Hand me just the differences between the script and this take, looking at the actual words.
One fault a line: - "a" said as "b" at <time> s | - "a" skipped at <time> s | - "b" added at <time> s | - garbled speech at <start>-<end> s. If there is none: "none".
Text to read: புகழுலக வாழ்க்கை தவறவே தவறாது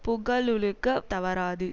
- "வாழ்க்கை தவறவே" skipped at 0.9 s